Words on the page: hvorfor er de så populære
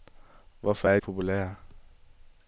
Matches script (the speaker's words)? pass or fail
fail